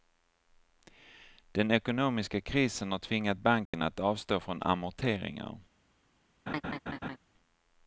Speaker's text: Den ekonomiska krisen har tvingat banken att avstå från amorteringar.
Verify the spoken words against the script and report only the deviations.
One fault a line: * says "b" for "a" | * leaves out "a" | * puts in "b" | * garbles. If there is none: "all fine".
all fine